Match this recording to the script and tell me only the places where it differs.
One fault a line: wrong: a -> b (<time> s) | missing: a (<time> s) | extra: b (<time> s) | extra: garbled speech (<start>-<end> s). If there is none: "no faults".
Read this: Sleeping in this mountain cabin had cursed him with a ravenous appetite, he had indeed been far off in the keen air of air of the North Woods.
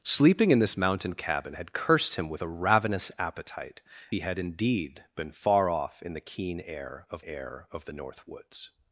no faults